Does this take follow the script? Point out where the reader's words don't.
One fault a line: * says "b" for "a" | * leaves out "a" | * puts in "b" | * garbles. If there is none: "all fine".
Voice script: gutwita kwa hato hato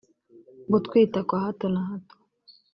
* puts in "na"